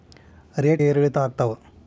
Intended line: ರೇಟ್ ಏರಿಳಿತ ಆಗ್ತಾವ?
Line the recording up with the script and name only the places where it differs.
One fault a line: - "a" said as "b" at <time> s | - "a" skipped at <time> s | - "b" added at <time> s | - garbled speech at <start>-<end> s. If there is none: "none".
none